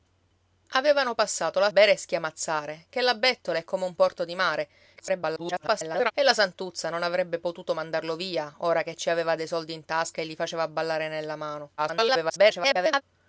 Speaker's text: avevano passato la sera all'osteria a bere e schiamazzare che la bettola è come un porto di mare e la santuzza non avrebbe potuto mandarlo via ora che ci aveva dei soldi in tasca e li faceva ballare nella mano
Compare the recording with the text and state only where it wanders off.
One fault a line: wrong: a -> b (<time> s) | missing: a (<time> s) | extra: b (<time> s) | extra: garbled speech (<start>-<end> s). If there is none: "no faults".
missing: sera all'osteria a (1.7 s)
extra: garbled speech (5.0-6.1 s)
extra: garbled speech (11.8-13.0 s)